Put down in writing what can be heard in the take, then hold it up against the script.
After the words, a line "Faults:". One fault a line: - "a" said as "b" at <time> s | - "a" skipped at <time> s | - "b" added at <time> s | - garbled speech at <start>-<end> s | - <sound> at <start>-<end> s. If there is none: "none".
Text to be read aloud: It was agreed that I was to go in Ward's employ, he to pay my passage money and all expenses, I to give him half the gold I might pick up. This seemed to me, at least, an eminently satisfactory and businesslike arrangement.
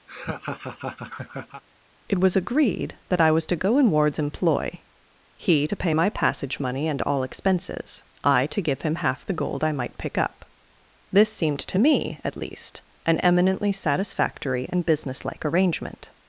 It was agreed that I was to go in Ward's employ, he to pay my passage money and all expenses, I to give him half the gold I might pick up. This seemed to me, at least, an eminently satisfactory and businesslike arrangement.
Faults:
- laugh at 0.1-1.6 s